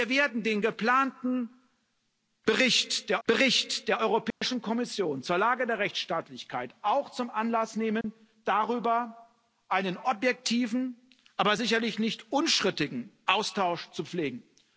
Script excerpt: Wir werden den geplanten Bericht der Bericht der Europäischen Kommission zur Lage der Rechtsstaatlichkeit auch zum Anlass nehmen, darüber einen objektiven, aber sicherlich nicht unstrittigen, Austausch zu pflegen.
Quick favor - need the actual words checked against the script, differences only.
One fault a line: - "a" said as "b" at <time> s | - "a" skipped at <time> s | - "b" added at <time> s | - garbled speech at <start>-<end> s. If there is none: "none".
none